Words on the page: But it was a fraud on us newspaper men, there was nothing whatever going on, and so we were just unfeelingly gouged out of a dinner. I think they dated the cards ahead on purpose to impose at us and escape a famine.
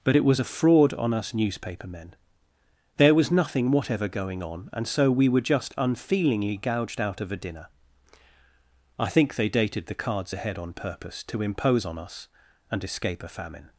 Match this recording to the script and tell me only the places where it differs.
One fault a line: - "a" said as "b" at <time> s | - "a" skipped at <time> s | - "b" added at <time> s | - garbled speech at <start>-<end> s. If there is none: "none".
- "at" said as "on" at 11.8 s